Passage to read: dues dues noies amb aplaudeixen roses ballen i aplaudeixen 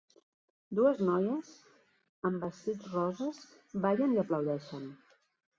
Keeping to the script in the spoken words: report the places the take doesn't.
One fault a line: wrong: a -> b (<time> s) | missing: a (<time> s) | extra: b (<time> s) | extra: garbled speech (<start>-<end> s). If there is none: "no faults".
missing: dues (1.0 s)
wrong: aplaudeixen -> vestits (2.5 s)